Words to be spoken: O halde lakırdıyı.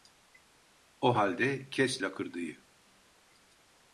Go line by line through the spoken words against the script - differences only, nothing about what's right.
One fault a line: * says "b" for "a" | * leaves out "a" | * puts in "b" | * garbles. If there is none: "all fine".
* puts in "kes"